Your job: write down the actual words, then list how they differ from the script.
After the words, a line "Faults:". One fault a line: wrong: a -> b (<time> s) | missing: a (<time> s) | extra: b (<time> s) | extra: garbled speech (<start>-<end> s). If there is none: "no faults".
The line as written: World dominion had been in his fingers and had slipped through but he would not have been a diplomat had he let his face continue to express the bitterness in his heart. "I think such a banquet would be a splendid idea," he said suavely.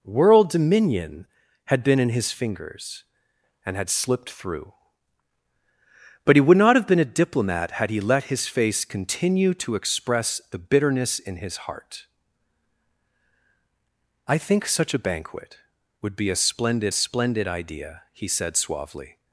World dominion had been in his fingers and had slipped through but he would not have been a diplomat had he let his face continue to express the bitterness in his heart. "I think such a banquet would be a splendid splendid idea," he said suavely.
Faults:
extra: splendid (16.9 s)